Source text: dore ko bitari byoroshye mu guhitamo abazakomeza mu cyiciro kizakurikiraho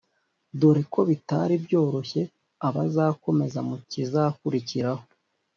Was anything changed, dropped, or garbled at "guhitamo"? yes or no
yes